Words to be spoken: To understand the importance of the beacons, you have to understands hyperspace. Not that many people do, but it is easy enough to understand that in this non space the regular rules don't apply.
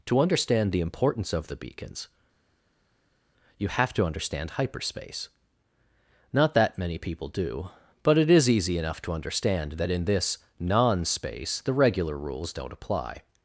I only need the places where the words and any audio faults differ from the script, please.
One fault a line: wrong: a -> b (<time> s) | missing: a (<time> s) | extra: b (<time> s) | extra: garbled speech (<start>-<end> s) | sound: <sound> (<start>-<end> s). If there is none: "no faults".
wrong: understands -> understand (4.1 s)